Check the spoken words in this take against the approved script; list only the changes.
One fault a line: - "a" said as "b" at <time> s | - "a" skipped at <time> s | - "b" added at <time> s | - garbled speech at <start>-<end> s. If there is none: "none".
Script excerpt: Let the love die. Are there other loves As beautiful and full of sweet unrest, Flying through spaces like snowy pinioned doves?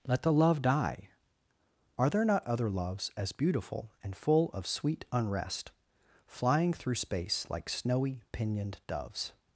- "not" added at 2.2 s
- "spaces" said as "space" at 7.0 s